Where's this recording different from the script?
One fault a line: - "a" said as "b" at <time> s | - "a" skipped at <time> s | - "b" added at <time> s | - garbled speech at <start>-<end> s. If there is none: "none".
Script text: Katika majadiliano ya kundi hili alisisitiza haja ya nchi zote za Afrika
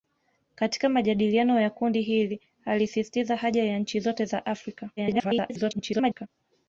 - garbled speech at 5.0-6.3 s